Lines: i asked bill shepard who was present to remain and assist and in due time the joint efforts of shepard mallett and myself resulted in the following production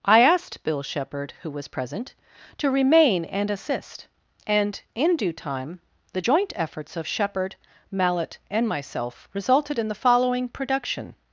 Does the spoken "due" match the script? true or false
true